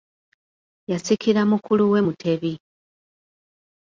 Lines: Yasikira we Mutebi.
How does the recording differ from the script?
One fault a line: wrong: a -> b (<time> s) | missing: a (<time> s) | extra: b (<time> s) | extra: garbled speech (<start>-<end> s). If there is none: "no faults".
extra: mukulu (1.5 s)